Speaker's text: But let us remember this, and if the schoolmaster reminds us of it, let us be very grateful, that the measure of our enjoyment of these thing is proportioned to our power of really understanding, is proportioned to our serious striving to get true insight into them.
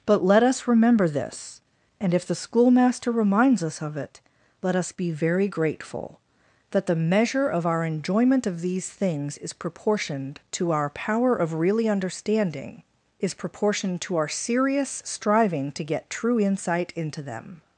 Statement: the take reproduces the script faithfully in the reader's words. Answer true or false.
false